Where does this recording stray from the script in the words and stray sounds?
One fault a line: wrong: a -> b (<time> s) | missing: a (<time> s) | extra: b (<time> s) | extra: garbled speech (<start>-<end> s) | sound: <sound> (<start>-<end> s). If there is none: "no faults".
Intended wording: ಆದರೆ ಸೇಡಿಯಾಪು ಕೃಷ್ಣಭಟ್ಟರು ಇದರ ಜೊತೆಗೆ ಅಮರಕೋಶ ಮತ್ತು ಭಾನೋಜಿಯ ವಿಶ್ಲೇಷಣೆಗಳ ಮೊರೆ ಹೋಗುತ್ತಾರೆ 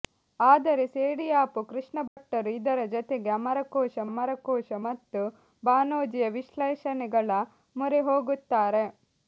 sound: dropout (2.1-2.2 s)
extra: ಅಮರಕೋಶ (4.1 s)